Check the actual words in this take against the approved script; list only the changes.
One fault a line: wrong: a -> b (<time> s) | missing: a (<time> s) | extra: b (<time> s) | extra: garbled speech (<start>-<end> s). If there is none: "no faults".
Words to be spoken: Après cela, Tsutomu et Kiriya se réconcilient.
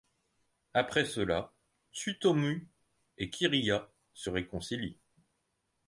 no faults